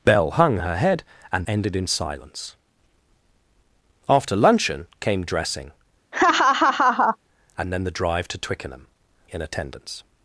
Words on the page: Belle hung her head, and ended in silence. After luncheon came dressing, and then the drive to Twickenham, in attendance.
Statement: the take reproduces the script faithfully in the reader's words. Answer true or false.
true